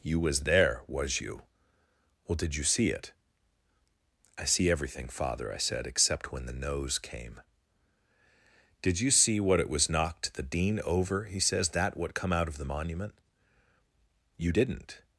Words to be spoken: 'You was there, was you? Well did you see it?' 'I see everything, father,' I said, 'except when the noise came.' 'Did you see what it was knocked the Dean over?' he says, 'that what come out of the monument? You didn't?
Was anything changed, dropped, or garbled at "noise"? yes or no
yes